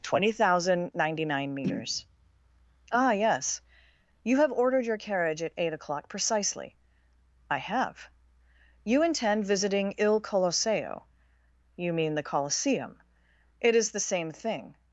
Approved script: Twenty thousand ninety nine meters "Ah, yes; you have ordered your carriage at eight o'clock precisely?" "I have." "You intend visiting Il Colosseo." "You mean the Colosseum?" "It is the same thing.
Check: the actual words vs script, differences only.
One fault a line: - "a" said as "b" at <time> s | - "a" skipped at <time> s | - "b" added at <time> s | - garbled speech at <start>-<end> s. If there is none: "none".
none